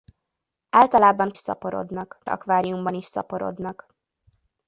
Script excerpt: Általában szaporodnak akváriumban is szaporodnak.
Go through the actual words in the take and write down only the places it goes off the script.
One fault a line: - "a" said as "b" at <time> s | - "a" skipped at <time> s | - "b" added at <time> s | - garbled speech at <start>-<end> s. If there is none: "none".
none